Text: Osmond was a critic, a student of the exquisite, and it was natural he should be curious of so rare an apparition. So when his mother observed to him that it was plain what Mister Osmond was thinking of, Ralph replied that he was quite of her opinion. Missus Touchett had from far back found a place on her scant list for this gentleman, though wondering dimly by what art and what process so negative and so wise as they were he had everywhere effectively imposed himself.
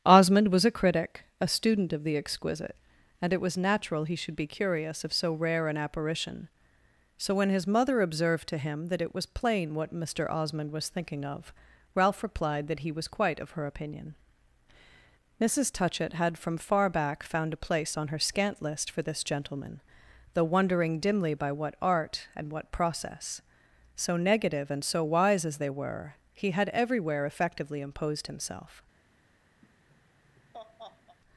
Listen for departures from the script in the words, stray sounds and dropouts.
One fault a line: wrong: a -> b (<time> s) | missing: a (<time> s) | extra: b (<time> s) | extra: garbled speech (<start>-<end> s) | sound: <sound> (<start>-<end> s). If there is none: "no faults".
sound: laugh (29.6-31.2 s)